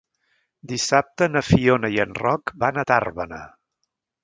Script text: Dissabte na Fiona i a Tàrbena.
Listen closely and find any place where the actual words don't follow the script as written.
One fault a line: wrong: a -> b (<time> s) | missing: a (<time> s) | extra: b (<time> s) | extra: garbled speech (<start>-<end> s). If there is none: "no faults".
extra: en Roc van (2.0 s)